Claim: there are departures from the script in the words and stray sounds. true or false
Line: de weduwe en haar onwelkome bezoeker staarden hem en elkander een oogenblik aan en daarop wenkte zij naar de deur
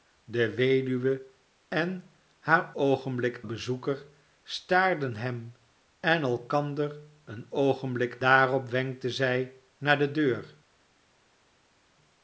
true